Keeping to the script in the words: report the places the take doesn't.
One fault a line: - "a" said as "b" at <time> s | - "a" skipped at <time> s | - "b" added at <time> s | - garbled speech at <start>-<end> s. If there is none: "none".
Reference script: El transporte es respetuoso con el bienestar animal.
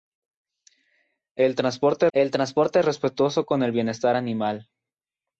- "el transporte" added at 2.1 s